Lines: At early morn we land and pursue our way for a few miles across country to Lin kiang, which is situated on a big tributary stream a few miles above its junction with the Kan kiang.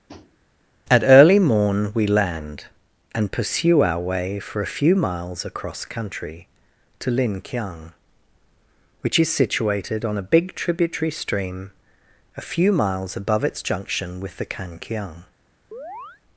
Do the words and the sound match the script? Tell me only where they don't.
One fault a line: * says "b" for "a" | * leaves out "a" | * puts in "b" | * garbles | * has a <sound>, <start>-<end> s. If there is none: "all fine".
* has a tap, 0.1-0.4 s
* has a chirp, 15.7-16.2 s